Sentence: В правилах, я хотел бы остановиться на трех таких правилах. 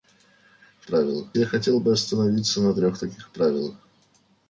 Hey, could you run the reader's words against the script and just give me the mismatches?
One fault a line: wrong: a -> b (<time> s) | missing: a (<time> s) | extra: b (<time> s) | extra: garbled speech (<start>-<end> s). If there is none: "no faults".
no faults